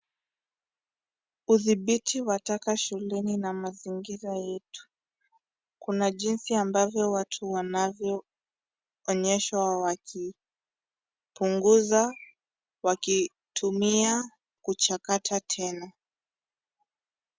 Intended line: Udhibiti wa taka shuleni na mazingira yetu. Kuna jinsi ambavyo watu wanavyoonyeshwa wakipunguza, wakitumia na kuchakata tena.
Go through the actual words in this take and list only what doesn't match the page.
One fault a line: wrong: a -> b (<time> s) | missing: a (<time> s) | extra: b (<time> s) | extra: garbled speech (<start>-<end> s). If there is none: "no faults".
missing: na (14.2 s)